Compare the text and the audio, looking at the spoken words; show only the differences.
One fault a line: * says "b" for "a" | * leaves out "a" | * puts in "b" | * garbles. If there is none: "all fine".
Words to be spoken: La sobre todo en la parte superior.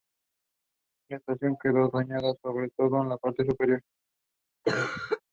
* puts in "estación quedó dañada"